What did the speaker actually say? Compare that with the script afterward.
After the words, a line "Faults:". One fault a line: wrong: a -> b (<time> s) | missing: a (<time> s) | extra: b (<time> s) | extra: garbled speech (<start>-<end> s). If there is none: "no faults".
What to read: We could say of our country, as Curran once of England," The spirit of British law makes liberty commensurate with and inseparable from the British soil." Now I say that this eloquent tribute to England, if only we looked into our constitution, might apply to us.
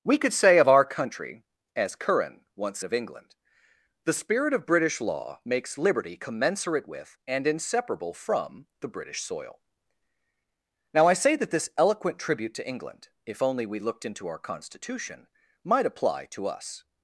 We could say of our country, as Curran once of England," The spirit of British law makes liberty commensurate with and inseparable from the British soil." Now I say that this eloquent tribute to England, if only we looked into our constitution, might apply to us.
Faults:
no faults